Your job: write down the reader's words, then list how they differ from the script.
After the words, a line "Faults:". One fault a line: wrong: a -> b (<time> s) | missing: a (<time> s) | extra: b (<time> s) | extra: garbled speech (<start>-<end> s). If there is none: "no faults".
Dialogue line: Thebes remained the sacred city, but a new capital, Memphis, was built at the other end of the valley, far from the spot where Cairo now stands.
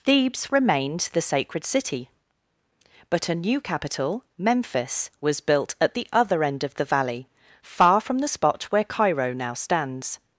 Thebes remained the sacred city, but a new capital, Memphis, was built at the other end of the valley, far from the spot where Cairo now stands.
Faults:
no faults